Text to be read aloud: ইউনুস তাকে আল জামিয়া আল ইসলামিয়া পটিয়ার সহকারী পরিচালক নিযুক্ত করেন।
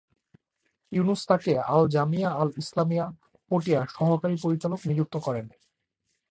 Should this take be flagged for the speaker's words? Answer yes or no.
no